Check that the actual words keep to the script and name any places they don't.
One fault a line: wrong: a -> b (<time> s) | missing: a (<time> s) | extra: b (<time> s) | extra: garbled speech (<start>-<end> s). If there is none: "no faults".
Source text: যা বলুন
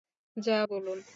no faults